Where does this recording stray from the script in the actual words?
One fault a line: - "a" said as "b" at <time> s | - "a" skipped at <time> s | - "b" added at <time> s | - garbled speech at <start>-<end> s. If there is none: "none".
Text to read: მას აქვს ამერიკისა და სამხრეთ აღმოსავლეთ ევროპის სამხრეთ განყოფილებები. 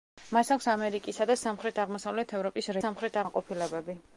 none